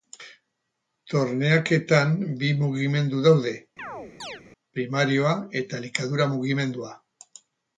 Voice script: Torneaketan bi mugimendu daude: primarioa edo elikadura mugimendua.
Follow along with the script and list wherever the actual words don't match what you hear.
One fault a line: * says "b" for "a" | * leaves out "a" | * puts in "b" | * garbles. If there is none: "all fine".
* says "eta" for "edo"